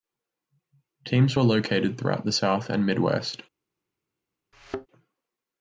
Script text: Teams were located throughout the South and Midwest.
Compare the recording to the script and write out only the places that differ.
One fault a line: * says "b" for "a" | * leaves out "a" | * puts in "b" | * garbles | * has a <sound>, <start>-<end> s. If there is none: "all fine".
* has a thud, 4.5-4.9 s